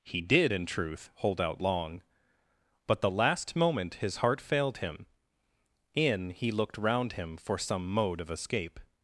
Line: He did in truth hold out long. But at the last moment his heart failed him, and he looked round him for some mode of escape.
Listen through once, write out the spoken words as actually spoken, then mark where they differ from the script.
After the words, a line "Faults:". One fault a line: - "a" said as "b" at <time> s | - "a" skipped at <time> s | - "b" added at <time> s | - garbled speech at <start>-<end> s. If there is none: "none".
He did in truth hold out long. But the last moment his heart failed him, in he looked round him for some mode of escape.
Faults:
- "at" skipped at 3.0 s
- "and" said as "in" at 5.9 s